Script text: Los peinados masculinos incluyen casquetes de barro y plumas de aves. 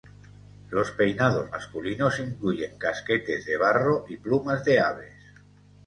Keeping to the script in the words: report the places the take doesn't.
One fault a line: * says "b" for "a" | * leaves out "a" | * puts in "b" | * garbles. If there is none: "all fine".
all fine